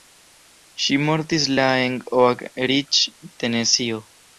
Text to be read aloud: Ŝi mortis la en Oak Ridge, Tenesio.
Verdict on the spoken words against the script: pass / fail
pass